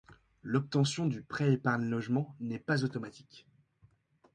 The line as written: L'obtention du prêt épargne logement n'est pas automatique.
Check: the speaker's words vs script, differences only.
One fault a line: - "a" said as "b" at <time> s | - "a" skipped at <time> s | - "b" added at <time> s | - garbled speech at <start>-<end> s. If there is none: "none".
none